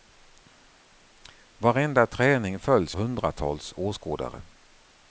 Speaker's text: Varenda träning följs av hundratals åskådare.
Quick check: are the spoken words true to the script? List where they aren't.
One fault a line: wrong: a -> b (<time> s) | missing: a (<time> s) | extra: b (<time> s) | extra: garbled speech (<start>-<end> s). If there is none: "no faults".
missing: av (3.0 s)